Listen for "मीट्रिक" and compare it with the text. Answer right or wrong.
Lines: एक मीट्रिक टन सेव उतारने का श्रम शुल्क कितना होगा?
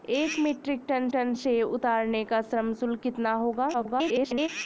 right